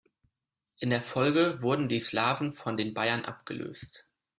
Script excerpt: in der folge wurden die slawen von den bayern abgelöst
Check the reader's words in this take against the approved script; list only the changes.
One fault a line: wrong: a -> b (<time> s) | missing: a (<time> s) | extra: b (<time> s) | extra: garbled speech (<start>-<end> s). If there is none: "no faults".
no faults